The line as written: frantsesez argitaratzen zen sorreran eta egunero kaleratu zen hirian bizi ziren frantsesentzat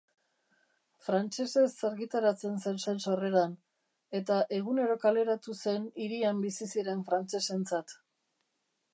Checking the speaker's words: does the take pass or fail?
fail